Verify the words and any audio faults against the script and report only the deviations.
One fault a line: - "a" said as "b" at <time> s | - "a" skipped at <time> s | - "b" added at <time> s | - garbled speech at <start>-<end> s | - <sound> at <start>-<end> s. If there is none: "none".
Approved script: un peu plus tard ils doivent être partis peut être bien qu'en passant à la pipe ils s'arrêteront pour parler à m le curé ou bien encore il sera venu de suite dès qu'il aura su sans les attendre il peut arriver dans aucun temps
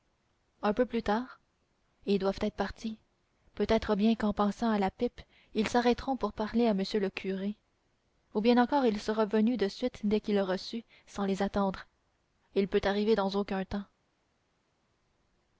none